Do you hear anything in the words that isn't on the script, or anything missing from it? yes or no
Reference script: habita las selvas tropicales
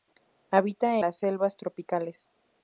no